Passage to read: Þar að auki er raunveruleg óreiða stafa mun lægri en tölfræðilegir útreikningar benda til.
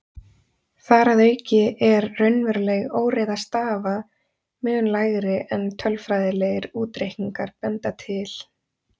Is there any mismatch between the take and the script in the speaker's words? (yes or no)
no